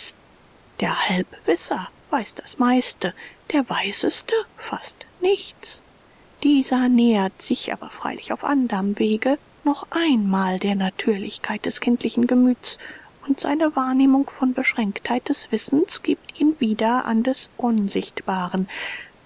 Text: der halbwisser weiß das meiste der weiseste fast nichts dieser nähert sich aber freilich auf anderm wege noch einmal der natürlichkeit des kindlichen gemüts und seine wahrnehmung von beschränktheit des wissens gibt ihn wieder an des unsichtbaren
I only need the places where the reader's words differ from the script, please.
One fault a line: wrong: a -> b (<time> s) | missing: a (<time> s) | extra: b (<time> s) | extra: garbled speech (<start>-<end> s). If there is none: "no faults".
no faults